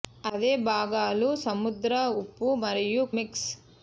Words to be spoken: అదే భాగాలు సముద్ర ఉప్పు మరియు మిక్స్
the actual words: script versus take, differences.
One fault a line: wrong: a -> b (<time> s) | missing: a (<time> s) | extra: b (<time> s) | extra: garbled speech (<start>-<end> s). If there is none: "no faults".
no faults